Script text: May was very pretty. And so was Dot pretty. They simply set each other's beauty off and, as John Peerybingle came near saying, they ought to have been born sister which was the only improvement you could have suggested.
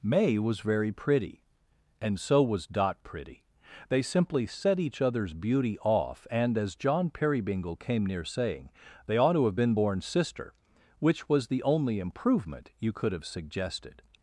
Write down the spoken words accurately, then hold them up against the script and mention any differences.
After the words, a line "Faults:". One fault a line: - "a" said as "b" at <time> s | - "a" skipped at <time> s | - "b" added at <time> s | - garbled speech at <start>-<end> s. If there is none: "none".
May was very pretty. And so was Dot pretty. They simply set each other's beauty off and, as John Peerybingle came near saying, they ought to have been born sister which was the only improvement you could have suggested.
Faults:
none